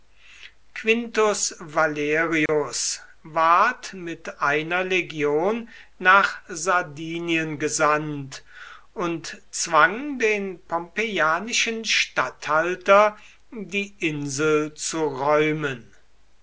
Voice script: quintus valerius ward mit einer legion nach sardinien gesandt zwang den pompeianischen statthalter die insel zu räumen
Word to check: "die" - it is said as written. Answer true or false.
true